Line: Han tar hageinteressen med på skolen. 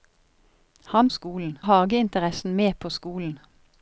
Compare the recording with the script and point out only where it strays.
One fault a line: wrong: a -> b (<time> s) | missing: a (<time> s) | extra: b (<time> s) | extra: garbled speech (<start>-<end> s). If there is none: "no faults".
wrong: tar -> skolen (1.1 s)